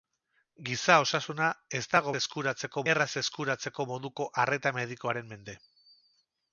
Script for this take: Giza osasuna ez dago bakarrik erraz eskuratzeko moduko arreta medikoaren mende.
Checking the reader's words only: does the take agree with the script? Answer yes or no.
no